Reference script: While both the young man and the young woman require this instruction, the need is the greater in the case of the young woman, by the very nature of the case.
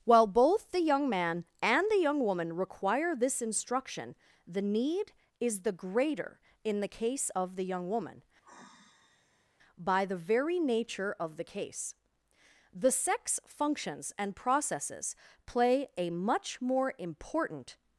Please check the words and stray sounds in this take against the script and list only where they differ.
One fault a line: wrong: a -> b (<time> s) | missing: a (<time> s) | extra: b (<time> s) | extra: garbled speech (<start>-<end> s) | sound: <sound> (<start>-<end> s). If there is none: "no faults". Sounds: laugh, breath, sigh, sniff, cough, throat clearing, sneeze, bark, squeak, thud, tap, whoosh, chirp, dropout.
sound: sigh (8.4-9.6 s)
extra: The sex functions and processes play a much more important (12.7 s)